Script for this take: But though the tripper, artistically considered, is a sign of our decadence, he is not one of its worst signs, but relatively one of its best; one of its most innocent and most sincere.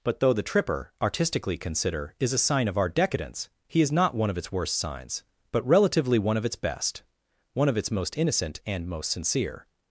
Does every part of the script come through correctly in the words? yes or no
no